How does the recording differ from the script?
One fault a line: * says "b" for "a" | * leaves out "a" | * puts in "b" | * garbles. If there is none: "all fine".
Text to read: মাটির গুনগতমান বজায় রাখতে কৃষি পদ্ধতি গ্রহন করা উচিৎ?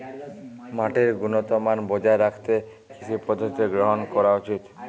all fine